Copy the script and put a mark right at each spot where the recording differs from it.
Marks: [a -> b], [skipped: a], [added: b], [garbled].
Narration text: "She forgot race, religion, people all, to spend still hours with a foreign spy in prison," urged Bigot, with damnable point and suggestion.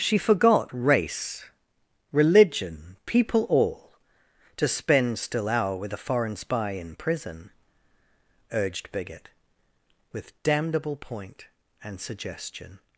"She forgot race, religion, people all, to spend still [hours -> hour] with a foreign spy in prison," urged Bigot, with damnable point and suggestion.